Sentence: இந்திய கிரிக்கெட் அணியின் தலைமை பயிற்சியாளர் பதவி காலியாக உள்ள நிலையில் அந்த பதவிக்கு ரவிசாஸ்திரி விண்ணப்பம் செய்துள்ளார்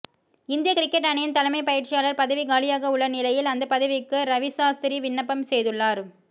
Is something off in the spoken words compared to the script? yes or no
no